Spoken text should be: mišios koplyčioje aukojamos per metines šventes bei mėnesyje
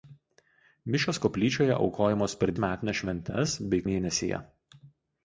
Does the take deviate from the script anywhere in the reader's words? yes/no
no